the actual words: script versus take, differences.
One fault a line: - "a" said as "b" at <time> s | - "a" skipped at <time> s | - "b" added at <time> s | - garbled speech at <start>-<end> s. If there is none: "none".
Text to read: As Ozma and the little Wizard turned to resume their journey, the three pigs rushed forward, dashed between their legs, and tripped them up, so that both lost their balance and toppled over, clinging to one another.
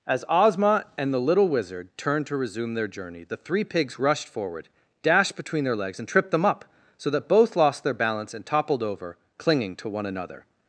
none